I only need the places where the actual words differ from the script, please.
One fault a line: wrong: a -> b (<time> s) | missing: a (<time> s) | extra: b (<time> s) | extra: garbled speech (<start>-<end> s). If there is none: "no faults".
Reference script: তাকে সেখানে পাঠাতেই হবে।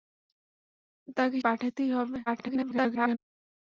missing: সেখানে (1.4 s)
extra: garbled speech (2.3-3.2 s)